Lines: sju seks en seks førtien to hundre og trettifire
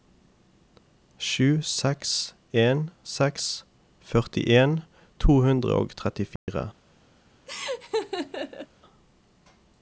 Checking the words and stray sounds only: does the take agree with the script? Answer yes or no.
no